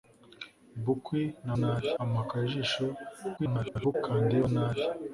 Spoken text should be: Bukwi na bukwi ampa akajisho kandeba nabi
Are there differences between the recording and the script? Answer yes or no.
yes